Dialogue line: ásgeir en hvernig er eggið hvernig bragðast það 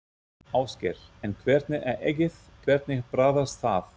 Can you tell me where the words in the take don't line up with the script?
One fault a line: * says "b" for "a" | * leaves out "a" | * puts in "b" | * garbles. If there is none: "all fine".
all fine